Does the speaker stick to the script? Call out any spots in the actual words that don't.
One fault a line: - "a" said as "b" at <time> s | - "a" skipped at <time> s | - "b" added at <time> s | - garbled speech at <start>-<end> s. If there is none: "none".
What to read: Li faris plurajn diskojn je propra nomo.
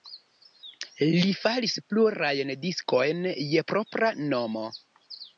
none